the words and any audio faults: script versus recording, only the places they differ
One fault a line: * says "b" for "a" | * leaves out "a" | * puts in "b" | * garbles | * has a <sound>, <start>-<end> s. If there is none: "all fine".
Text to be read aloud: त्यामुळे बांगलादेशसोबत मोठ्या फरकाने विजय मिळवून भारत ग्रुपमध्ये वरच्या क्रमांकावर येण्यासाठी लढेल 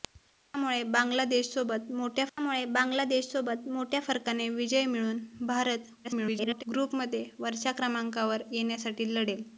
* puts in "त्यामुळे बांगलादेशसोबत मोठ्या"
* garbles